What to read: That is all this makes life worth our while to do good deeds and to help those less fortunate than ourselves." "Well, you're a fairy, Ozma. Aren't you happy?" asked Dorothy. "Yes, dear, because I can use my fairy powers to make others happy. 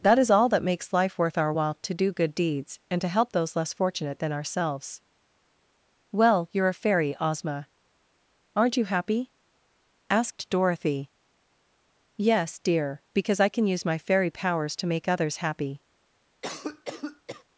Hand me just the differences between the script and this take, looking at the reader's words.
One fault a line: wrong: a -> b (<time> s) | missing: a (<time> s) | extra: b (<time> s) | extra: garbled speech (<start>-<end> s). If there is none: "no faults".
wrong: this -> that (0.5 s)